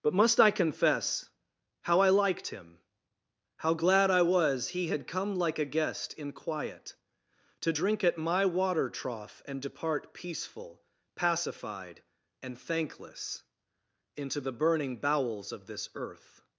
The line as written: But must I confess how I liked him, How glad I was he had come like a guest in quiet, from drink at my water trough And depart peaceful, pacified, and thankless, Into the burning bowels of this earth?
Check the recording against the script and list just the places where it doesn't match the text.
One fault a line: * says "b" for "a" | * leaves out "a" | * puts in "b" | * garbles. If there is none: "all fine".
* says "to" for "from"